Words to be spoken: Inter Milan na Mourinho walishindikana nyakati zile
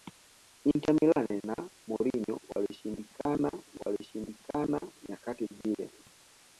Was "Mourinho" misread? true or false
false